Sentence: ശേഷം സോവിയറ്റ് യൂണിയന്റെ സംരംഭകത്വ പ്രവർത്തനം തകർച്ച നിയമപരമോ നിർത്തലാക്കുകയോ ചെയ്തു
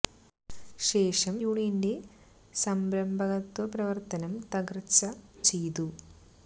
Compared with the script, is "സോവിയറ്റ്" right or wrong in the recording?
wrong